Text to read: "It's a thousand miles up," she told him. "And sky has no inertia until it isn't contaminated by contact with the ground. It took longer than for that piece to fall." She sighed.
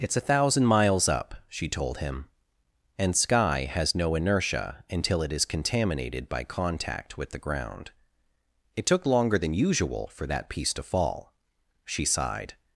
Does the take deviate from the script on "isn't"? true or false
true